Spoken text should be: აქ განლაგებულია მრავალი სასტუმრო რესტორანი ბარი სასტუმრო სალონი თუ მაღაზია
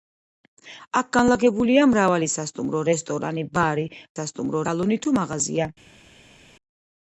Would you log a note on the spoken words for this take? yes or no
no